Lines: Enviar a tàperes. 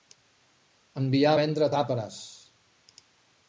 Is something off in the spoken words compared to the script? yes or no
yes